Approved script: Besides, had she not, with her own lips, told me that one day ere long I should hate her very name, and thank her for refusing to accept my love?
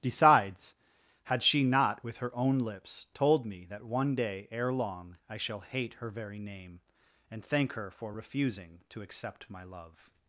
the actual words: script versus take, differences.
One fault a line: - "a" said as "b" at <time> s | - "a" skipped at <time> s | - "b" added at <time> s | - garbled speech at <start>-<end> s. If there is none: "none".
- "should" said as "shall" at 5.4 s